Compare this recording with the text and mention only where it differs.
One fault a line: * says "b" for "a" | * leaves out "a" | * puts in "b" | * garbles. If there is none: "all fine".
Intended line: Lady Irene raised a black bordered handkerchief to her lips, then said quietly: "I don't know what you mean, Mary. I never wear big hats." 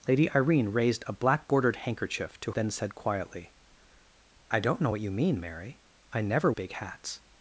* leaves out "her lips"
* leaves out "wear"